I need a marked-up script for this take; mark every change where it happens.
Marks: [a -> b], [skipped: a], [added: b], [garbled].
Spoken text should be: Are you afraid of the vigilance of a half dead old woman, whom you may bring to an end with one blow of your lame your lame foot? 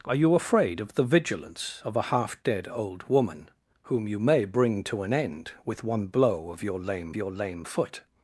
Are you afraid of the vigilance of a half dead old woman, whom you may bring to an end with one blow of your lame your lame foot?